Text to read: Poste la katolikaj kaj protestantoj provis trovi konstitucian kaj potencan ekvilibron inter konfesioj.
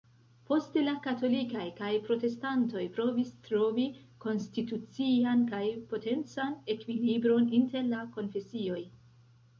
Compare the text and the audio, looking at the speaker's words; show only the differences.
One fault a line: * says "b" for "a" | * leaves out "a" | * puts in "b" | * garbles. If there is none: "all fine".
* puts in "la"